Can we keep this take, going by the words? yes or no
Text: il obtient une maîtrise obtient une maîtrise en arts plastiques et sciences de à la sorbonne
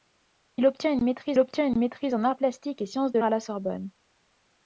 yes